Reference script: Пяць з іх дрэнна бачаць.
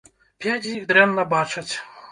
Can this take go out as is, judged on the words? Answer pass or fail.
pass